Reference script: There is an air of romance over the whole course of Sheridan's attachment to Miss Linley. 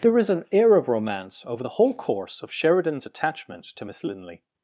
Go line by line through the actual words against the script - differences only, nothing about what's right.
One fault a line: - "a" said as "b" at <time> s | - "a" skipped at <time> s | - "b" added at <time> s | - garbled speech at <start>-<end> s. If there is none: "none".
none